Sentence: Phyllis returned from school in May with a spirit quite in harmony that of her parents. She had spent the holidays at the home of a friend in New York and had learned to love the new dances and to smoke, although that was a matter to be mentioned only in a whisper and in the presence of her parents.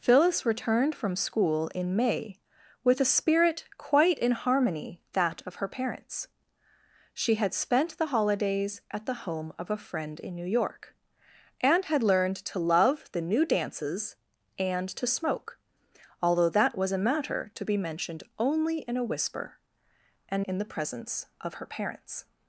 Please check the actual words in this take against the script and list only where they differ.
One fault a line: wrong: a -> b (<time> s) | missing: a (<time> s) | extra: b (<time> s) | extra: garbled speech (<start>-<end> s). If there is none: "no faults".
no faults